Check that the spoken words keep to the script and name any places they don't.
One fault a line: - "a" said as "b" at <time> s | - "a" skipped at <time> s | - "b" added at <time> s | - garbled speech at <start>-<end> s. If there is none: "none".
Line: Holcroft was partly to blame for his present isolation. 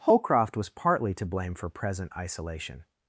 - "his" skipped at 1.7 s